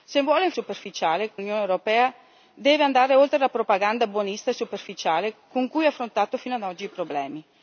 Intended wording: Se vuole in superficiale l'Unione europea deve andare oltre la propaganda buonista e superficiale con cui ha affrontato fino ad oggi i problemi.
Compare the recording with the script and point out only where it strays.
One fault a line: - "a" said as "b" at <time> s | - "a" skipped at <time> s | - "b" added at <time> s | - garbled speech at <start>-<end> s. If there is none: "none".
none